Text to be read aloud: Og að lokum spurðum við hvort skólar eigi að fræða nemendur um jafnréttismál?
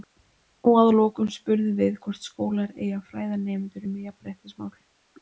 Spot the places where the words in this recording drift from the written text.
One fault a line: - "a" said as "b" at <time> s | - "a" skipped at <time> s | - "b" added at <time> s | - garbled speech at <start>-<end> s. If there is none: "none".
none